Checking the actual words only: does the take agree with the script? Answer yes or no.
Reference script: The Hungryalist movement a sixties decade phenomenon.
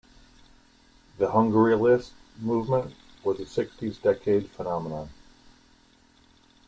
no